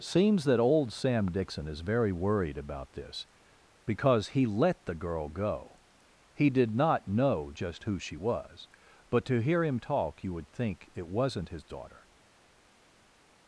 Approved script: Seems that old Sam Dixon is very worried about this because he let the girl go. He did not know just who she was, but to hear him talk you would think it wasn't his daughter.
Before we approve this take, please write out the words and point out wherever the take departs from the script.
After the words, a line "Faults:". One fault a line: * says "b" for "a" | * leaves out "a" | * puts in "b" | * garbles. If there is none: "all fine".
Seems that old Sam Dixon is very worried about this because he let the girl go. He did not know just who she was, but to hear him talk you would think it wasn't his daughter.
Faults:
all fine